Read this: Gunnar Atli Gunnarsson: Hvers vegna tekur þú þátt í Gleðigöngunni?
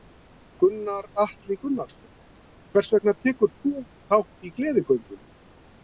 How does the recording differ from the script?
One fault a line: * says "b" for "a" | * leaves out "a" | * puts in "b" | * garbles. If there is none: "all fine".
all fine